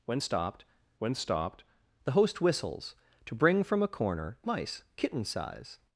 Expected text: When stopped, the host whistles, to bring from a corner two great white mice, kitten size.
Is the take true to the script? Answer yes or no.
no